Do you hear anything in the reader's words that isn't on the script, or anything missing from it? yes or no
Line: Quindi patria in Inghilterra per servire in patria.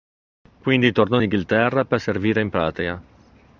yes